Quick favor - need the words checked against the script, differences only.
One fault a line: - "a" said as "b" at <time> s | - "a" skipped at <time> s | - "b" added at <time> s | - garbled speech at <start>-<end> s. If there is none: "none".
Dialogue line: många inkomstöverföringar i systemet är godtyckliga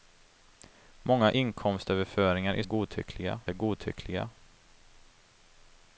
- "systemet" said as "godtyckliga" at 2.6 s